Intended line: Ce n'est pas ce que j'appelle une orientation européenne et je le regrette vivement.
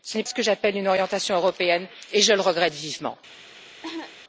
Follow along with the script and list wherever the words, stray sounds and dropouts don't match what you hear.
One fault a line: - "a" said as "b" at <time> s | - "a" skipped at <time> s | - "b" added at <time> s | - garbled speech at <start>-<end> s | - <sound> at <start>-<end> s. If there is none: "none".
- "pas" skipped at 0.2 s
- cough at 3.8-4.2 s